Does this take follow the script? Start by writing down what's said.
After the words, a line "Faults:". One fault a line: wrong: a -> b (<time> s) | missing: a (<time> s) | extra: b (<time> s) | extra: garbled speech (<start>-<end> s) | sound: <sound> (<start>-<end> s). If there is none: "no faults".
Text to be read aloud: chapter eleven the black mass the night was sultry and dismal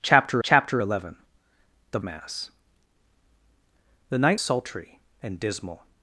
chapter chapter eleven the mass the night sultry and dismal
Faults:
extra: chapter (0.4 s)
missing: black (2.0 s)
missing: was (4.4 s)